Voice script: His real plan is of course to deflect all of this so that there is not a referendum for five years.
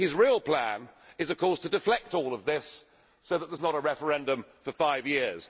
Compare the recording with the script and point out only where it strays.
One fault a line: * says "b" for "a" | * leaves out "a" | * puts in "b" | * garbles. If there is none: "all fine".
all fine